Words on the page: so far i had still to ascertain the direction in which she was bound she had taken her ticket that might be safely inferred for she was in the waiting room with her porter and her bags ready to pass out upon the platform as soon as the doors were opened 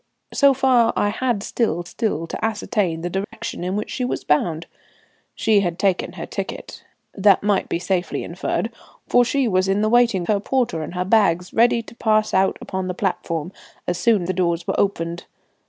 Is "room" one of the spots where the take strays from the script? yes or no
yes